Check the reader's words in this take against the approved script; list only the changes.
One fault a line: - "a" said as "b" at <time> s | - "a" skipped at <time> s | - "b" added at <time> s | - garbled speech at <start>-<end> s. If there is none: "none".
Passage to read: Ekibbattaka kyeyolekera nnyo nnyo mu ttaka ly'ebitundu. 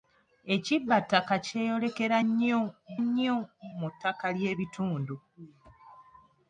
none